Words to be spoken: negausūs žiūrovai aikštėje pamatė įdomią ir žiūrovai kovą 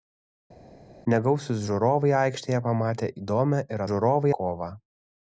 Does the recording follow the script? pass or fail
pass